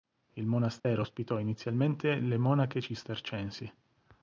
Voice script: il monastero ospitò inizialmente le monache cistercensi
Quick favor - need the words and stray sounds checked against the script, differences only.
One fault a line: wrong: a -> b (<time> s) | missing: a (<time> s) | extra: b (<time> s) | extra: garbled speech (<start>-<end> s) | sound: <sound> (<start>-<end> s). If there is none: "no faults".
sound: dropout (0.8-0.8 s)